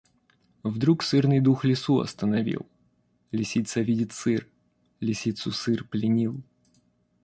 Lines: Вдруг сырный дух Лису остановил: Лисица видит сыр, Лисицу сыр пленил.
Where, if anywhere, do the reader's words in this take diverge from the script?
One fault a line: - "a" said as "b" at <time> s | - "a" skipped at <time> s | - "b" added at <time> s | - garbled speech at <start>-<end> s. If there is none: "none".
none